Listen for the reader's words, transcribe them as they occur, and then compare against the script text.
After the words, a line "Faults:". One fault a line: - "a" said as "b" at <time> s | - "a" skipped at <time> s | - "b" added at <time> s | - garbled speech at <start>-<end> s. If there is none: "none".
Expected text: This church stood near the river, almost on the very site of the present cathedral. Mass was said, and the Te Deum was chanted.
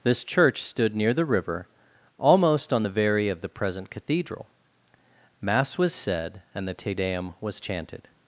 This church stood near the river, almost on the very of the present cathedral. Mass was said, and the Te Deum was chanted.
Faults:
- "site" skipped at 3.3 s